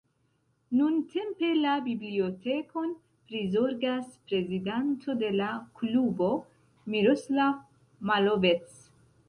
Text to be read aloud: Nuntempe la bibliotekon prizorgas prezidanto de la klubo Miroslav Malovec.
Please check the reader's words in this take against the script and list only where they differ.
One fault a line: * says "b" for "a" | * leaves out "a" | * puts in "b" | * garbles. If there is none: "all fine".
all fine